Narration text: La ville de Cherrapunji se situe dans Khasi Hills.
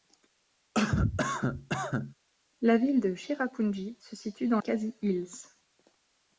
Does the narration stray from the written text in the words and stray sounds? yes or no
yes